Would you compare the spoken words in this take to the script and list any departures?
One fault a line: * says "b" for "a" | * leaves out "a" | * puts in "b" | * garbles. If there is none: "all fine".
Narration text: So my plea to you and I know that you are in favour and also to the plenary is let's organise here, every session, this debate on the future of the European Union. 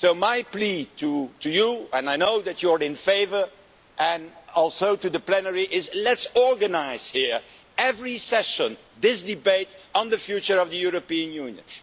all fine